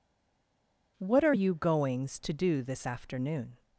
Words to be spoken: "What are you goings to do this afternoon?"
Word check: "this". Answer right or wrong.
right